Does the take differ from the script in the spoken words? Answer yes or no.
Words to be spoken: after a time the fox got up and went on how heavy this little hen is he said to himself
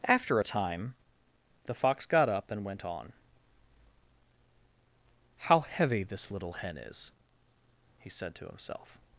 no